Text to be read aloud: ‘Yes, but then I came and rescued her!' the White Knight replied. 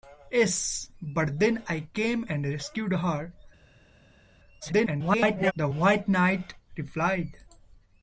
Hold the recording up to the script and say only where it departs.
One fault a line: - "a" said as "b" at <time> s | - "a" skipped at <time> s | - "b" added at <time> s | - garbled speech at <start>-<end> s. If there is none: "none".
- garbled speech at 4.6-5.5 s